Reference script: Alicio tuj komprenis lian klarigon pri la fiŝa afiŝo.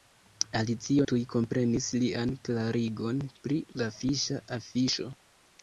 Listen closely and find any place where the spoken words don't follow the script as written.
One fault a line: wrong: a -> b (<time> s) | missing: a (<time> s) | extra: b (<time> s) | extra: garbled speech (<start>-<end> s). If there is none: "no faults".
no faults